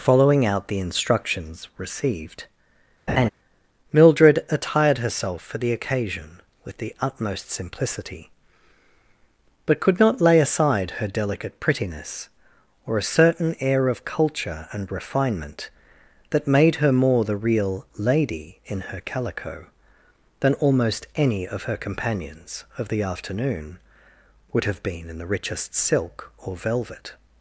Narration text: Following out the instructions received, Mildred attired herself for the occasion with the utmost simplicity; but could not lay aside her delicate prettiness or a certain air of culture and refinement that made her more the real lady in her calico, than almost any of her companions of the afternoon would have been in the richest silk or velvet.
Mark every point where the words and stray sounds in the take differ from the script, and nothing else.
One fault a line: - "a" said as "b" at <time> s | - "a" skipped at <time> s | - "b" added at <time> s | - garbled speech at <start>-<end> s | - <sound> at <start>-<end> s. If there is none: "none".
- laugh at 3.1-3.3 s